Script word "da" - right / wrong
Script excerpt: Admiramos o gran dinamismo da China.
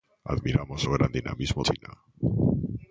wrong